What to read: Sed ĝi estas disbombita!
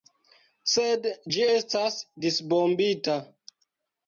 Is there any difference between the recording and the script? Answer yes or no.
no